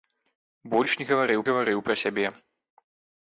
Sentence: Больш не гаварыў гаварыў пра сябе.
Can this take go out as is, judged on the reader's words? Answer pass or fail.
pass